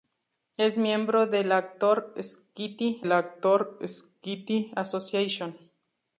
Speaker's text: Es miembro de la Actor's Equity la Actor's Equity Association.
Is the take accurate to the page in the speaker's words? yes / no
yes